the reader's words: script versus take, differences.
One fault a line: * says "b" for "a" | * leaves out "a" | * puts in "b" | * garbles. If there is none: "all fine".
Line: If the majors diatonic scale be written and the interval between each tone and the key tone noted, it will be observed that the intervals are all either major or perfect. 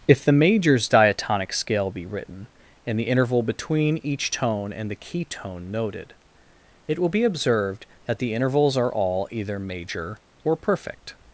all fine